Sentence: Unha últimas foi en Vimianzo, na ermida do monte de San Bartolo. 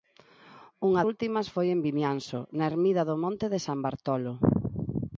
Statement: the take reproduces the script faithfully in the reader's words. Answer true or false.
true